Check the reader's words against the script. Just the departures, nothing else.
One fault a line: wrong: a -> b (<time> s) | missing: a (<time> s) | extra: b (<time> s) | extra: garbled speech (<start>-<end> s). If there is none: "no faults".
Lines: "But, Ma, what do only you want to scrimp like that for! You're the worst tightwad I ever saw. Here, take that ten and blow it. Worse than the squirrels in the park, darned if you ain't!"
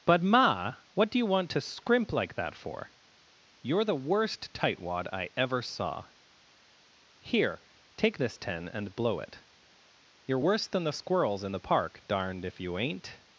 missing: only (1.2 s)
wrong: that -> this (8.2 s)
extra: You're (10.2 s)